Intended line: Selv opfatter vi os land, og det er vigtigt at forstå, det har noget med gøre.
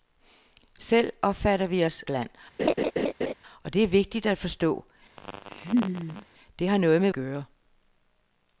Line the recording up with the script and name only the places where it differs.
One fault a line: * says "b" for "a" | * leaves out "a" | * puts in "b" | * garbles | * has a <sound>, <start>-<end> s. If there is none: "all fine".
* has a laugh, 2.6-3.3 s
* has a laugh, 5.2-6.3 s